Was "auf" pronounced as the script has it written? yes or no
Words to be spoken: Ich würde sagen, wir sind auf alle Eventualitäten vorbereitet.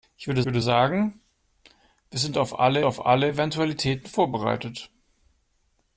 yes